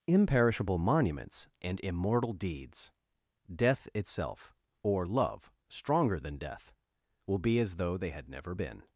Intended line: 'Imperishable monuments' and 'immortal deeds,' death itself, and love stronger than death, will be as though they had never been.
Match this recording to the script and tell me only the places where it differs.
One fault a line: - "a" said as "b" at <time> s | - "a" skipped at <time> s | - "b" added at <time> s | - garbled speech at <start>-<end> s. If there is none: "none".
- "and" said as "or" at 4.8 s